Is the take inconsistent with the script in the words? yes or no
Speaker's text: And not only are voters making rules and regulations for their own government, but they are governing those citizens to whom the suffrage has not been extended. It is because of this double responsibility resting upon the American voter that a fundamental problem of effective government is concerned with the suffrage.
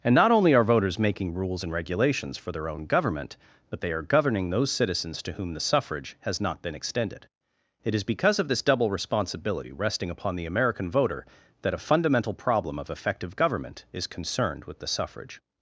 no